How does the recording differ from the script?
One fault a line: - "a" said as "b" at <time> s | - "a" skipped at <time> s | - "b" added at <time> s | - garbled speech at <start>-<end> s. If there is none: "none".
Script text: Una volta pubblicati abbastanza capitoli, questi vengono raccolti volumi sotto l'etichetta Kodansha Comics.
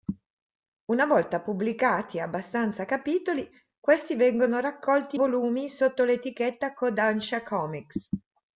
none